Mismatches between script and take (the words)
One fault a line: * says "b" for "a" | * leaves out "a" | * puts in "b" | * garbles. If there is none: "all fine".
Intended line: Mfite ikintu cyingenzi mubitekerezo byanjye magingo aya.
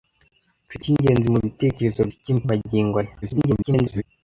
* leaves out "ikintu"
* says "ikintu" for "byanjye"
* garbles